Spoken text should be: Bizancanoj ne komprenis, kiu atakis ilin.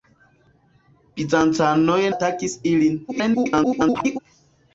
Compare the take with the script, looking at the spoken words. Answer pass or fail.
fail